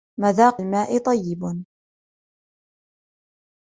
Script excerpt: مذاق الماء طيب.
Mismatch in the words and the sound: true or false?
false